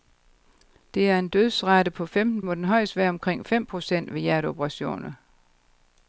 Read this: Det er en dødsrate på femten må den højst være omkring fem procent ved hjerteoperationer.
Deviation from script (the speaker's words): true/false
false